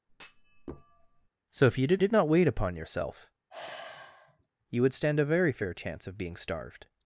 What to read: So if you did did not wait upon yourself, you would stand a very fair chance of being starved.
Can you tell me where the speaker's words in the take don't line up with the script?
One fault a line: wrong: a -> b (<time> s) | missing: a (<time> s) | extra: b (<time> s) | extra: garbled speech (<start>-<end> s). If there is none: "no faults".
no faults